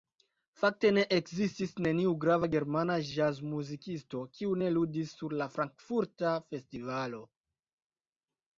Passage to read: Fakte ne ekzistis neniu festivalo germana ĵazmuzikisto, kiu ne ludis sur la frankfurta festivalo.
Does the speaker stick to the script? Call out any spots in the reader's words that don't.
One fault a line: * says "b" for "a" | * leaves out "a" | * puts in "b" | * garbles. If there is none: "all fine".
* says "grava" for "festivalo"